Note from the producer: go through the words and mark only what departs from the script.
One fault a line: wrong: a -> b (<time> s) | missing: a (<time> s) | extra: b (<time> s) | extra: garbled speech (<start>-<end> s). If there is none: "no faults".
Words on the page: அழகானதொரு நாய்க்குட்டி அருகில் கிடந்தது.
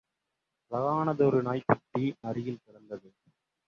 no faults